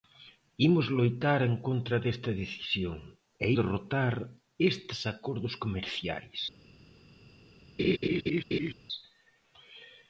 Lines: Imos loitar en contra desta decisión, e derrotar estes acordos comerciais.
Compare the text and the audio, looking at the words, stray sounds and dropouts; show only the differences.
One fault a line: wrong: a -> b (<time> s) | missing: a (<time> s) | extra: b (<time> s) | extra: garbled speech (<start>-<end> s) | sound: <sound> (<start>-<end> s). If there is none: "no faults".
sound: laugh (7.8-8.7 s)